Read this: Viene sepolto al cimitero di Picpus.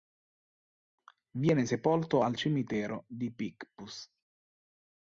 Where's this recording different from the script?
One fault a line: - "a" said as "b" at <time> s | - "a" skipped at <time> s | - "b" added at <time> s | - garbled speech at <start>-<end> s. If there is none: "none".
none